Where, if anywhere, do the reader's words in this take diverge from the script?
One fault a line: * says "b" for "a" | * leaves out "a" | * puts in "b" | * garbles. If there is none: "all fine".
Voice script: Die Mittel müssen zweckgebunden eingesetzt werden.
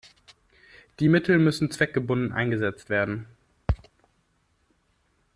all fine